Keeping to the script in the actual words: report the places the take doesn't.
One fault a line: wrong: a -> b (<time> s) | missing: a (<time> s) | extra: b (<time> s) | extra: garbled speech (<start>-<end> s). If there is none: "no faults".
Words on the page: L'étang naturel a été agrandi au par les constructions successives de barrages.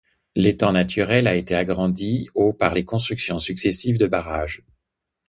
no faults